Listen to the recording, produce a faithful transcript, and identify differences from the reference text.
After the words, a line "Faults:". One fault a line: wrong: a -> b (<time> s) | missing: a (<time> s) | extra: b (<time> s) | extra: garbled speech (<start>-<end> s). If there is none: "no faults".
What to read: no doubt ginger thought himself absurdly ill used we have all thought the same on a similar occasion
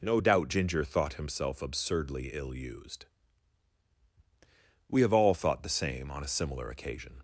no doubt ginger thought himself absurdly ill used we have all thought the same on a similar occasion
Faults:
no faults